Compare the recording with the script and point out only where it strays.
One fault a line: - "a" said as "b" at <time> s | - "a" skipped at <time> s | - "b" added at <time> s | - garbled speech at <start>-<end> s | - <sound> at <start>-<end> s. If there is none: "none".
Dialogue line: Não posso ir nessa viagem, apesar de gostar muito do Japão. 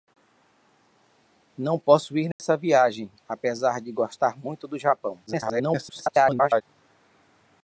- dropout at 2.3-2.4 s
- garbled speech at 5.3-6.6 s